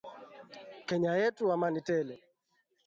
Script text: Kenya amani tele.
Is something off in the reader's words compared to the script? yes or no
yes